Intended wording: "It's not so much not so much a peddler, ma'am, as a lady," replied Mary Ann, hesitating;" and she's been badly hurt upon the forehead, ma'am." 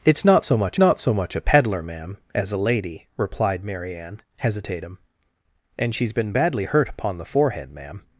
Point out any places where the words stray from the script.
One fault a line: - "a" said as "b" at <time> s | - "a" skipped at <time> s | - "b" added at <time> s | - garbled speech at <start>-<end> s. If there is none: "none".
none